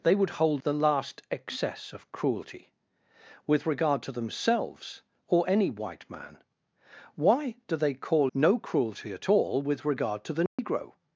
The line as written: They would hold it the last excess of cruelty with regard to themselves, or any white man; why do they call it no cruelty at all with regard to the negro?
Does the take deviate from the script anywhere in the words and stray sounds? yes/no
yes